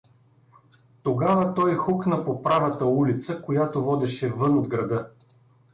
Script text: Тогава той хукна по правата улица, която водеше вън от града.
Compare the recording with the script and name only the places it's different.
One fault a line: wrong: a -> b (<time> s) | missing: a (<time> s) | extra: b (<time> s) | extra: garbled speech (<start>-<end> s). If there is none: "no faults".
no faults